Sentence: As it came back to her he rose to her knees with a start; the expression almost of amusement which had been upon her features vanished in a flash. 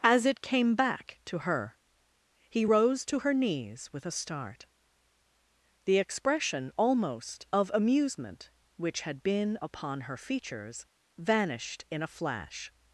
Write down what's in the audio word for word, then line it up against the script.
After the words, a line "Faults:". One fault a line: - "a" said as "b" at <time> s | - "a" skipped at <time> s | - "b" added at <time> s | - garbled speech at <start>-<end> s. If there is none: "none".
As it came back to her he rose to her knees with a start; the expression almost of amusement which had been upon her features vanished in a flash.
Faults:
none